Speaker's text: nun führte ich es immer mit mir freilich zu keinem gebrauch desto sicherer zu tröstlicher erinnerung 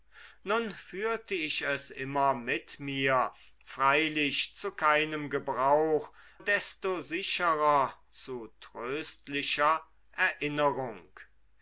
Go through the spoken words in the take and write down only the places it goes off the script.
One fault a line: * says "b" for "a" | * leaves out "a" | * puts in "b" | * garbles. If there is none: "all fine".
all fine